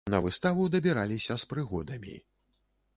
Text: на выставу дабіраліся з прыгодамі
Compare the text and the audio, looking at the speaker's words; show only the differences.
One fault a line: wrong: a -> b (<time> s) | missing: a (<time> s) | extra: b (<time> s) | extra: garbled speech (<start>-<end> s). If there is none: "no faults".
no faults